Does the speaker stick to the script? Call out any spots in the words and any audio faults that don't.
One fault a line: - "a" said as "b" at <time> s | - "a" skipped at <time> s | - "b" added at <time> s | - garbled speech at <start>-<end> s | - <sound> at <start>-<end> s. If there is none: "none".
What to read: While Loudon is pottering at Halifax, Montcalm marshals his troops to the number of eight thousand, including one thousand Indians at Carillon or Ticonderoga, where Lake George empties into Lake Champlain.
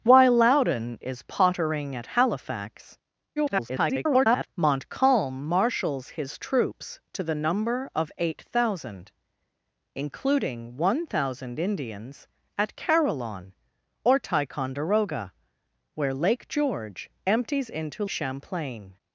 - garbled speech at 3.4-4.5 s
- "Lake" skipped at 18.0 s